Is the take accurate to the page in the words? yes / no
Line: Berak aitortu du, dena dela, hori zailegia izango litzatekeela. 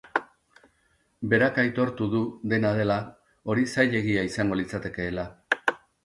yes